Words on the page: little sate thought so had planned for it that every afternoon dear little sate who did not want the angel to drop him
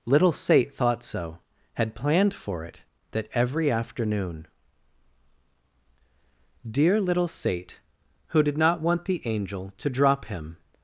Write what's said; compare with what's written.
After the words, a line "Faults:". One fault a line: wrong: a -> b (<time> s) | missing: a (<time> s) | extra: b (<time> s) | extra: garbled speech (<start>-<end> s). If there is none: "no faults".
little sate thought so had planned for it that every afternoon dear little sate who did not want the angel to drop him
Faults:
no faults